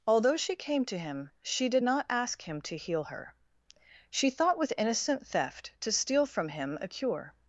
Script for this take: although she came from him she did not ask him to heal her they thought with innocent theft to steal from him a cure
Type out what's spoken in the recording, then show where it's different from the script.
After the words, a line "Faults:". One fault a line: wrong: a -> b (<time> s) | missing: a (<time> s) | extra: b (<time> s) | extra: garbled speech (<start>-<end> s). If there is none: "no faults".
although she came to him she did not ask him to heal her she thought with innocent theft to steal from him a cure
Faults:
wrong: from -> to (0.8 s)
wrong: they -> she (4.1 s)